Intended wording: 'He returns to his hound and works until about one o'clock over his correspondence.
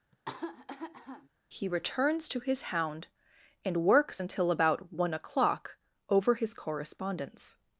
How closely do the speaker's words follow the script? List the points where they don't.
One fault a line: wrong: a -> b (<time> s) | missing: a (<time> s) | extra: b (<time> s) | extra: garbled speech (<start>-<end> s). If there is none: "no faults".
no faults